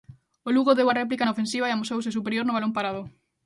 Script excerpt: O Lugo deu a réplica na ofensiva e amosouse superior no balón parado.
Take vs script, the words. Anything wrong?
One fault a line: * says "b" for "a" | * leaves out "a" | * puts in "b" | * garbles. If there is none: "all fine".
all fine